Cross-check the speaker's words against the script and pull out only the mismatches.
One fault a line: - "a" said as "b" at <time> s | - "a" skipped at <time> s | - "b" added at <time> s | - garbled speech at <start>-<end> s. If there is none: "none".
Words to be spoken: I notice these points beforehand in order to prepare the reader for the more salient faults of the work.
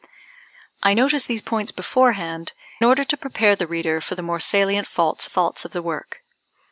- "in" skipped at 2.5 s
- "faults" added at 5.2 s